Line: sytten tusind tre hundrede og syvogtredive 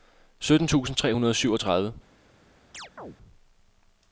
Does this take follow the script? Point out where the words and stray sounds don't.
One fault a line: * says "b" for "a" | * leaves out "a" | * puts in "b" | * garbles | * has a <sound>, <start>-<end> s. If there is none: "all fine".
* has a chirp, 2.7-3.2 s